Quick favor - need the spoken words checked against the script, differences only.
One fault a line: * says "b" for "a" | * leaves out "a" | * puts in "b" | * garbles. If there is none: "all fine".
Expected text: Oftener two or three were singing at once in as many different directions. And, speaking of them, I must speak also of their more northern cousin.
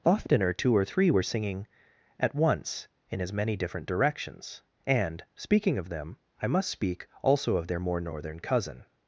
all fine